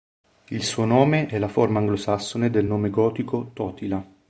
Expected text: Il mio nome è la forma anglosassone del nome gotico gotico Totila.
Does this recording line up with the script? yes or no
no